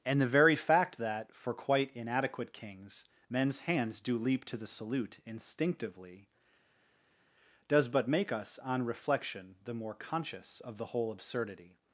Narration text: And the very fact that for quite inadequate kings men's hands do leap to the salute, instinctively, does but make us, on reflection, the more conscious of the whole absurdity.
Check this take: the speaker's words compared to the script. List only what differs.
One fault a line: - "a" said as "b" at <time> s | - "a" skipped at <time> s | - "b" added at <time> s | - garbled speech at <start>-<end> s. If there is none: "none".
none